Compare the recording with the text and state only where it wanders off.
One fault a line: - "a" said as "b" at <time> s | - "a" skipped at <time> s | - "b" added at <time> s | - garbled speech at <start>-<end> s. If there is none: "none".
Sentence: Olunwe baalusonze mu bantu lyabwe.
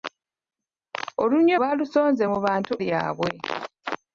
none